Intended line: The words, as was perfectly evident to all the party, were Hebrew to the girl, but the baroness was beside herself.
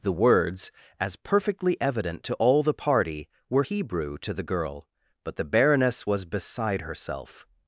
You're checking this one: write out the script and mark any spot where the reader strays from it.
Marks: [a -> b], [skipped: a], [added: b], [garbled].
The words, as [skipped: was] perfectly evident to all the party, were Hebrew to the girl, but the baroness was beside herself.